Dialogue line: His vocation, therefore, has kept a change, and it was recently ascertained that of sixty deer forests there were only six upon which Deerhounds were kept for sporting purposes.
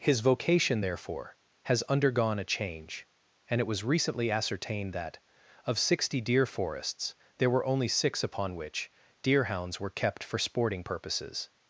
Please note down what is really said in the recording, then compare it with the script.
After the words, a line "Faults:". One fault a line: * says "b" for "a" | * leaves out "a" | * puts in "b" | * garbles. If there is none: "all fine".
His vocation, therefore, has undergone a change, and it was recently ascertained that of sixty deer forests there were only six upon which Deerhounds were kept for sporting purposes.
Faults:
* says "undergone" for "kept"